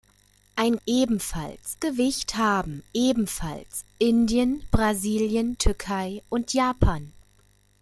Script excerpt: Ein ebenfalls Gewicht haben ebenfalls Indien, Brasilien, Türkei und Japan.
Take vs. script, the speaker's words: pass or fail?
pass